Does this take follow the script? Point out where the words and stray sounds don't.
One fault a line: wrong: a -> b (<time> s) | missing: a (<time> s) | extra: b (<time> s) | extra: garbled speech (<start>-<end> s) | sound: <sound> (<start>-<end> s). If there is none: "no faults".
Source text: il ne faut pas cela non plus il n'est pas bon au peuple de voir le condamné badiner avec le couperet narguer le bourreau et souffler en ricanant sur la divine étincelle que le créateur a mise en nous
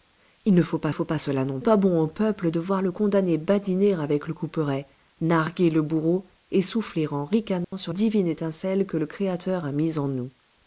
extra: faut pas (0.9 s)
missing: plus il n'est (1.6 s)
sound: dropout (7.6-7.7 s)
missing: la (7.9 s)